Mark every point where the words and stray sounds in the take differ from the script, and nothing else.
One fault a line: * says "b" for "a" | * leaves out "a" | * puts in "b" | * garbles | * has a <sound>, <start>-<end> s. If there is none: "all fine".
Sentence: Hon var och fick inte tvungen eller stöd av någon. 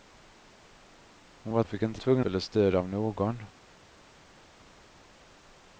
all fine